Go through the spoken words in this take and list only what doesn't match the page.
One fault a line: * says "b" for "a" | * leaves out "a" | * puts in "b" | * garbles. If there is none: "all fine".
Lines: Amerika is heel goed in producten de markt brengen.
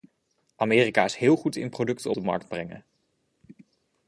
all fine